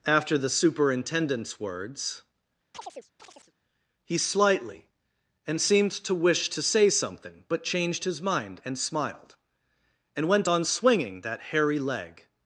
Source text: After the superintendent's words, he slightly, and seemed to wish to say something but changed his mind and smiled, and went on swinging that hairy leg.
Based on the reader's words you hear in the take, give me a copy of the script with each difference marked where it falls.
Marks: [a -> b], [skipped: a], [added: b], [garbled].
After the superintendent's words, he slightly, and seemed to wish to say something but changed his mind and smiled, and went on swinging that hairy leg.